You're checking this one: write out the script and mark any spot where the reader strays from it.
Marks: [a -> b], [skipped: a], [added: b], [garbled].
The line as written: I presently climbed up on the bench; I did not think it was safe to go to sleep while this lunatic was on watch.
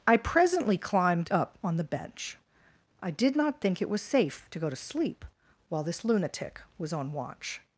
I presently climbed up on the bench; I did not think it was safe to go to sleep while this lunatic was on watch.